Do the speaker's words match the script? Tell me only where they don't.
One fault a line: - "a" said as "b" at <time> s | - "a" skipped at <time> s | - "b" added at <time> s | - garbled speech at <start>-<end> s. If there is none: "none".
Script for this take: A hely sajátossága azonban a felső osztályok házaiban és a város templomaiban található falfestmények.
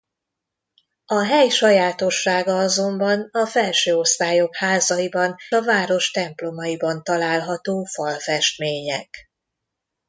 - "és" skipped at 5.3 s